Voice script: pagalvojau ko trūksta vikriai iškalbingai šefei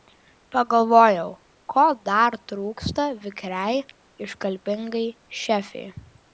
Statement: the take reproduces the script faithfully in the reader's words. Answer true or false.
false